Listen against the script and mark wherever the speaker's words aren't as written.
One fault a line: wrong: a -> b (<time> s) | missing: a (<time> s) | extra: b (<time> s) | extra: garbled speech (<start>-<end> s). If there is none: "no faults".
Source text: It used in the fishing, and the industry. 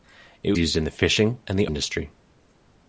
no faults